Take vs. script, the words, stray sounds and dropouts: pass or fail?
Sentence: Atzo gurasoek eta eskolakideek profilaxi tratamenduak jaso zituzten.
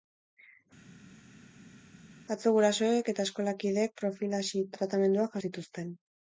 fail